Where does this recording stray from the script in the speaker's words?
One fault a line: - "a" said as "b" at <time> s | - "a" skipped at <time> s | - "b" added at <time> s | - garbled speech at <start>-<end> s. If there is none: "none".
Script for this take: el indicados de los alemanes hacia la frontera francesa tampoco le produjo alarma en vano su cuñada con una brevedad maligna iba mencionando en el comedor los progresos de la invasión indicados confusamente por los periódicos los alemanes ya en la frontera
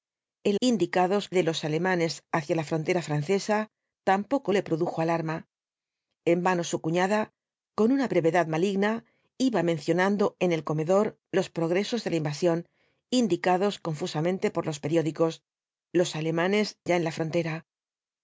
none